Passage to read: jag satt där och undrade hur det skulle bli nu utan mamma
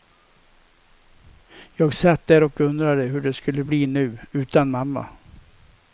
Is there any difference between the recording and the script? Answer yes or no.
no